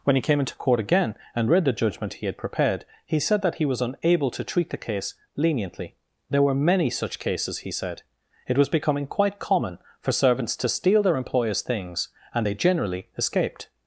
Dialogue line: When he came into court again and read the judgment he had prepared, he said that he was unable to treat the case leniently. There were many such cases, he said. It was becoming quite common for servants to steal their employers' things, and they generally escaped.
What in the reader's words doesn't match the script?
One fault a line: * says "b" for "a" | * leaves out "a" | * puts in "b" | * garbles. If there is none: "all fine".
all fine